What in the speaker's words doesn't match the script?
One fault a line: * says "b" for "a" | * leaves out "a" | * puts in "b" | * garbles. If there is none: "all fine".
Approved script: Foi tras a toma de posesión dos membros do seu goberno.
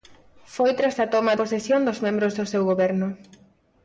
* leaves out "de"